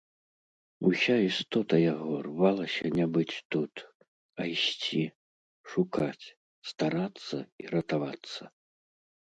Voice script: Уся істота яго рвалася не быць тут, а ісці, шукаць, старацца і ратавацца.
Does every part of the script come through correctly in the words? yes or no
yes